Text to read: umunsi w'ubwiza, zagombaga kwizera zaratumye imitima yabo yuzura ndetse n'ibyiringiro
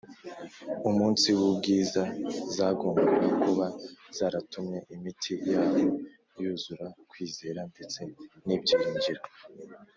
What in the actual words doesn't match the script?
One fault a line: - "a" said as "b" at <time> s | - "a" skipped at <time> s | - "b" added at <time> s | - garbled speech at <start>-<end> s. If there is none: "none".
- "kwizera" said as "kuba" at 3.4 s
- "kwizera" added at 7.1 s